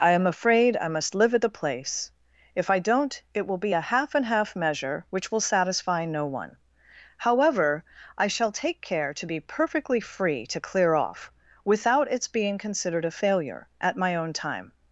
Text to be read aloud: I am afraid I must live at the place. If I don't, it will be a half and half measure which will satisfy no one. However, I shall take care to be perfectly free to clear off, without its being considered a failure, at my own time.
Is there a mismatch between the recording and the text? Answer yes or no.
no